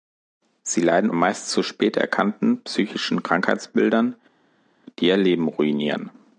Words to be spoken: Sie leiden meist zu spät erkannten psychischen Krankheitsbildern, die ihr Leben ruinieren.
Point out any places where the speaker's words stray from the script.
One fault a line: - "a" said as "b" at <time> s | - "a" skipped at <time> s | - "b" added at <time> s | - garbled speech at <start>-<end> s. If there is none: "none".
none